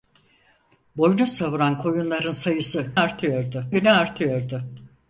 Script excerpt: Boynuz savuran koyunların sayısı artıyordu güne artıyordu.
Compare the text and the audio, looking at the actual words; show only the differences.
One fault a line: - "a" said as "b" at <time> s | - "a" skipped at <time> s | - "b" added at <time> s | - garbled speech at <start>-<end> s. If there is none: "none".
none